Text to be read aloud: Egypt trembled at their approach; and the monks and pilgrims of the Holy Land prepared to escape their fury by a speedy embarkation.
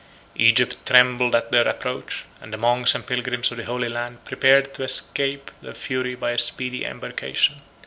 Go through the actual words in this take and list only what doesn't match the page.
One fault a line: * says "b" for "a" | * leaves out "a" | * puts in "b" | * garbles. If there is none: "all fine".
all fine